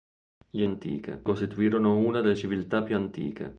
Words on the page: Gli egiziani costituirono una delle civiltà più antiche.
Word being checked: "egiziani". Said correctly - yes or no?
no